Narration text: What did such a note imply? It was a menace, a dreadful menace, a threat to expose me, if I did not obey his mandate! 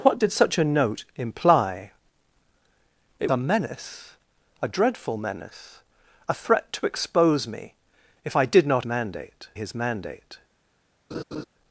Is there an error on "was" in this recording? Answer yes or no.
yes